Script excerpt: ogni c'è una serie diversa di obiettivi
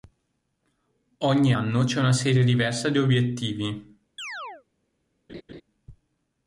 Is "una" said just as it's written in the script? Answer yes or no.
yes